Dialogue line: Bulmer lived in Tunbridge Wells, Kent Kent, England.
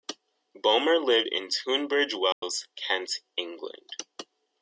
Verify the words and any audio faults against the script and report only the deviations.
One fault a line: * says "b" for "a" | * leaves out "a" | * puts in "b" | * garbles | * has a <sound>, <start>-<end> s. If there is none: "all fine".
* has a dropout, 2.3-2.4 s
* leaves out "Kent"